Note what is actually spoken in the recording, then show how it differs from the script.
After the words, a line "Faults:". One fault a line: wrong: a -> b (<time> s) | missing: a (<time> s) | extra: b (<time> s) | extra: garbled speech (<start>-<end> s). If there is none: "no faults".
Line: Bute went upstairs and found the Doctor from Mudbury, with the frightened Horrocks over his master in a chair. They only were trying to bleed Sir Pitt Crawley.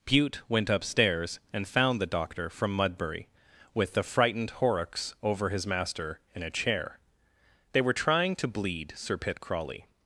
Bute went upstairs and found the Doctor from Mudbury, with the frightened Horrocks over his master in a chair. They were trying to bleed Sir Pitt Crawley.
Faults:
missing: only (7.8 s)